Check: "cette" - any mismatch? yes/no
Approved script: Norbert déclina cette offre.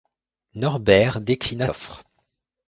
yes